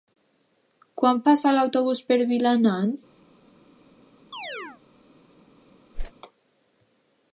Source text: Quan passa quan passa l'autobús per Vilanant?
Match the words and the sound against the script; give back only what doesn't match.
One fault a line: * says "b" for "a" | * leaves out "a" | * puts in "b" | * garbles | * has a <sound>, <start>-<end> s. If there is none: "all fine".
* leaves out "quan passa"
* has a chirp, 4.3-4.8 s
* has a whoosh, 5.9-6.1 s